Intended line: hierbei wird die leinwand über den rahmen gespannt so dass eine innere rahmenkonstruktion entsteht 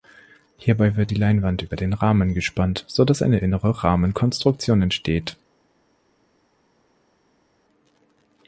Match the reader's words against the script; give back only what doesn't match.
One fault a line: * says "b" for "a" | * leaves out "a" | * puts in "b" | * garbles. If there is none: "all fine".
all fine